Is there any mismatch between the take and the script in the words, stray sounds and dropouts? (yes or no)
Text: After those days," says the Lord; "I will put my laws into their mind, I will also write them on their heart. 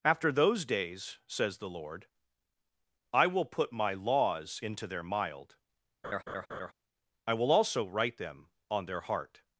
yes